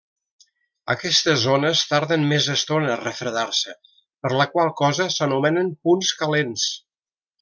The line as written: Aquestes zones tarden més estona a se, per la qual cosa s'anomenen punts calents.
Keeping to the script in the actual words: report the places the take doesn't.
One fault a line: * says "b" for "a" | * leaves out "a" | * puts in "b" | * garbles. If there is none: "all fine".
* puts in "refredar"